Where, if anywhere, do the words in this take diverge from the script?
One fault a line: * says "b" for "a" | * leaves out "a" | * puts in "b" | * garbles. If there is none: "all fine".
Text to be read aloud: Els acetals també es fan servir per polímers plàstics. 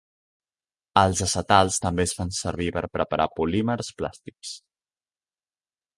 * puts in "preparar"